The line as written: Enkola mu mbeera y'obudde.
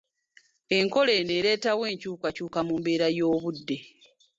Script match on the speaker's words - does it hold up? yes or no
no